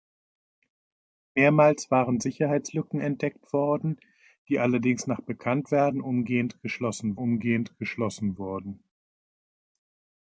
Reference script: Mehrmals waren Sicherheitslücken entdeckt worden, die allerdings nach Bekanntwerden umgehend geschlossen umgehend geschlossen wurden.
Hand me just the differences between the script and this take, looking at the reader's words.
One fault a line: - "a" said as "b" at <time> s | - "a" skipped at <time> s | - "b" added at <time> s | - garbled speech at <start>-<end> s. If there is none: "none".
none